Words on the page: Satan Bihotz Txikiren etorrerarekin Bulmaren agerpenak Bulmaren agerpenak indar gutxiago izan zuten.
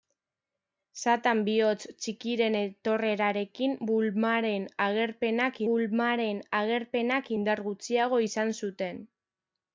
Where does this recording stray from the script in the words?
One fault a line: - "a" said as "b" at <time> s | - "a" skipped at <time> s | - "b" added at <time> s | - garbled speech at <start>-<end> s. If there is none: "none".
none